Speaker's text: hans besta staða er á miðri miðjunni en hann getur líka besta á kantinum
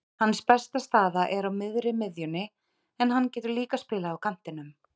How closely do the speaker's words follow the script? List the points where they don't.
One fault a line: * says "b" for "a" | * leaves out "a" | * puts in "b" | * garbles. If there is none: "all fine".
* says "spilað" for "besta"